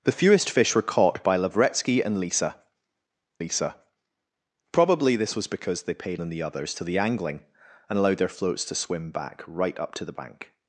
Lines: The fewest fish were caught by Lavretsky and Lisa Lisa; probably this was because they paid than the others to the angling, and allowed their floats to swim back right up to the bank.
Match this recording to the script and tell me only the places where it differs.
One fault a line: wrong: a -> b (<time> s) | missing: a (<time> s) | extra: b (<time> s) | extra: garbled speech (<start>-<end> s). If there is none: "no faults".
no faults